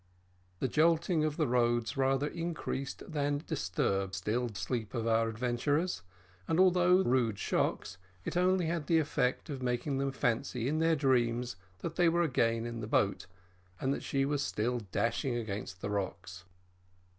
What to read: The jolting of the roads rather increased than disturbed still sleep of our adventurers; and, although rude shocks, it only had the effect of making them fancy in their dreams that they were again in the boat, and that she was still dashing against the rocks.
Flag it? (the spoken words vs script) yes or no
no